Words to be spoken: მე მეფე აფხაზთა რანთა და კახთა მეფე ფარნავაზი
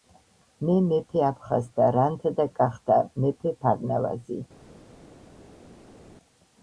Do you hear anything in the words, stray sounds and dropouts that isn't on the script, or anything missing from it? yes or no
no